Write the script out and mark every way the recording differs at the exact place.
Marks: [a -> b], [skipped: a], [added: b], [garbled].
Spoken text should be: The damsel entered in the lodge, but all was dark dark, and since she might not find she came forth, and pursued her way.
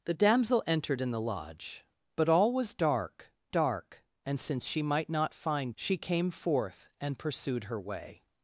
The damsel entered in the lodge, but all was dark dark, and since she might not find she came forth, and pursued her way.